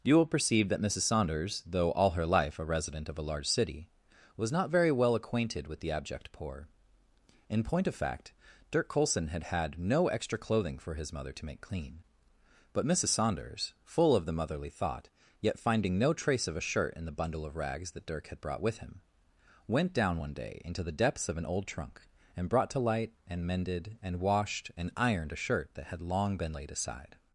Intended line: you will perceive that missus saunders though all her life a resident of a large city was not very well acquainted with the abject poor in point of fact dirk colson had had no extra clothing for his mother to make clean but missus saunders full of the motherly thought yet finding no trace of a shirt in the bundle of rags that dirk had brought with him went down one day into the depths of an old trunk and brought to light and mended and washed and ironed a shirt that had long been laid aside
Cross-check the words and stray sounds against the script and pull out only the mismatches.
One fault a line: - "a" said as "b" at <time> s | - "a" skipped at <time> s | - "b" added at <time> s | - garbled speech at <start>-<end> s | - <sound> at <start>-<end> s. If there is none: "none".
none